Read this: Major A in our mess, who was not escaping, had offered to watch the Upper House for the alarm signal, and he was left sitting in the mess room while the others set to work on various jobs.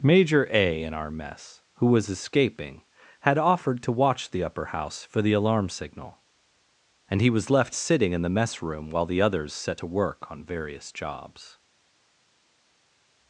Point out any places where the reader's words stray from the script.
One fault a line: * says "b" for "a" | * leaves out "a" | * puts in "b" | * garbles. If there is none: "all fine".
* leaves out "not"